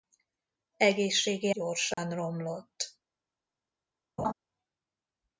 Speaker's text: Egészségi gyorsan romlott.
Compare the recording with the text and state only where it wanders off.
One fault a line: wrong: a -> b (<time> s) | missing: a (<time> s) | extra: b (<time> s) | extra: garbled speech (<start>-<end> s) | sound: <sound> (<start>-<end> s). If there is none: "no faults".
sound: dropout (1.9-2.0 s)
sound: laugh (4.2-4.3 s)